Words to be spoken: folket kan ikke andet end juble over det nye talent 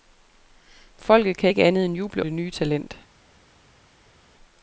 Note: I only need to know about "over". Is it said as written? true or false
false